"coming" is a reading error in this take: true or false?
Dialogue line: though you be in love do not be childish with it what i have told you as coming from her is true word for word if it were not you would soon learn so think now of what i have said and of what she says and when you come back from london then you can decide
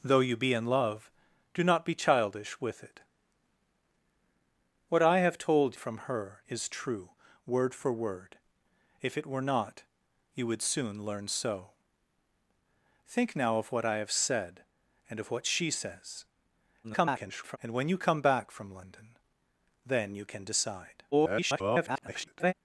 true